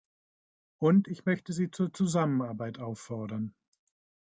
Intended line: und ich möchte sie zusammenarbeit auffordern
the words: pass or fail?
fail